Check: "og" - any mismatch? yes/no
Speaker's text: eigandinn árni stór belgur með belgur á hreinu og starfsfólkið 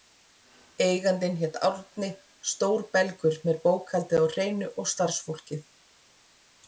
no